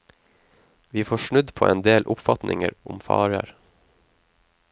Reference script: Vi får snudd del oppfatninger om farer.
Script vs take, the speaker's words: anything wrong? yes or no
yes